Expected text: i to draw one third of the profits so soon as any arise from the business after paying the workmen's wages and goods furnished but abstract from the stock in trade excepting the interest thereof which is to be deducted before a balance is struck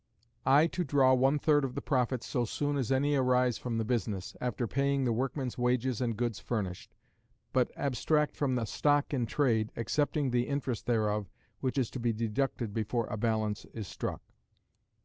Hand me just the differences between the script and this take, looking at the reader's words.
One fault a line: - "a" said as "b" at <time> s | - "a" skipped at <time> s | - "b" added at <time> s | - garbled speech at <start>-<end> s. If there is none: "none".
none